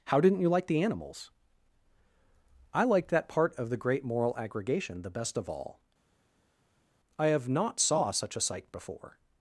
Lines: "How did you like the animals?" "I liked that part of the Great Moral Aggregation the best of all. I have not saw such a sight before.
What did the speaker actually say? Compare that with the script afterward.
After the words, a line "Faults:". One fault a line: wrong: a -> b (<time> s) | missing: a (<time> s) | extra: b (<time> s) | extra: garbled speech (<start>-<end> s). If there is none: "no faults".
"How didn't you like the animals?" "I liked that part of the Great Moral Aggregation the best of all. I have not saw such a sight before.
Faults:
wrong: did -> didn't (0.2 s)